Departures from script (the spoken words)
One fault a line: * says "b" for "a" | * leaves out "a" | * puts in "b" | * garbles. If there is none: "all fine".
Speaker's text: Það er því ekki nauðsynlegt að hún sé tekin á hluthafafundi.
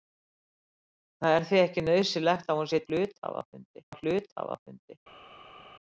* says "hluthafafundi" for "tekin"